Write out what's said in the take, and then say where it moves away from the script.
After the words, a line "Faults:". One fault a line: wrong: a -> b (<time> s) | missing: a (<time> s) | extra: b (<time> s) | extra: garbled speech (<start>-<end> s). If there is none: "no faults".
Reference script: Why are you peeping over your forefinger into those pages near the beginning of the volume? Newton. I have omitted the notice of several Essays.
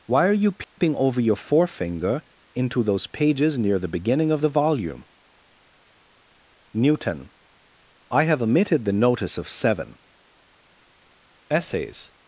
Why are you peeping over your forefinger into those pages near the beginning of the volume? Newton. I have omitted the notice of seven Essays.
Faults:
wrong: several -> seven (9.5 s)